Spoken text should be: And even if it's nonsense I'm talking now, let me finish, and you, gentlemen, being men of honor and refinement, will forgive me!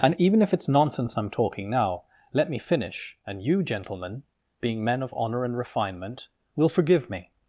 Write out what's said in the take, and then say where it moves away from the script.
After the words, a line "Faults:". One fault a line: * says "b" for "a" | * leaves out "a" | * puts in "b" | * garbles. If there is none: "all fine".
And even if it's nonsense I'm talking now, let me finish, and you, gentlemen, being men of honor and refinement, will forgive me!
Faults:
all fine